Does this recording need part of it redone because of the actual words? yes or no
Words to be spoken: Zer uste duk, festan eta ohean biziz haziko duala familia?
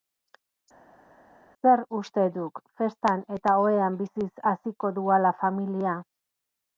no